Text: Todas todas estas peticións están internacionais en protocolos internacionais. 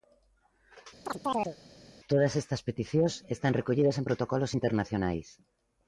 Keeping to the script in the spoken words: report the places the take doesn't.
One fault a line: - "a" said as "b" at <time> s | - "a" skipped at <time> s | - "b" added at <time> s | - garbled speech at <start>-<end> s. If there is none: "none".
- "todas" skipped at 2.3 s
- "internacionais" said as "recollidas" at 3.6 s